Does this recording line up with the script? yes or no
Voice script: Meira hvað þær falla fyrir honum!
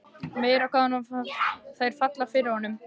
yes